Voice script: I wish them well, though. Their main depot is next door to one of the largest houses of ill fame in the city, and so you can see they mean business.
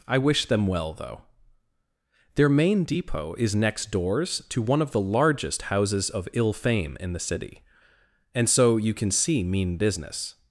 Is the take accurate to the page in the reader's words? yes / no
no